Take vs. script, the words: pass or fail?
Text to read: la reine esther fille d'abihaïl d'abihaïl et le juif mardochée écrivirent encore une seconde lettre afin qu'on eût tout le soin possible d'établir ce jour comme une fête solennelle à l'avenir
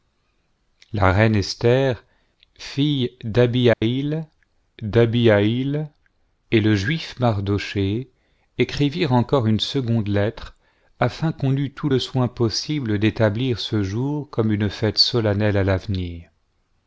pass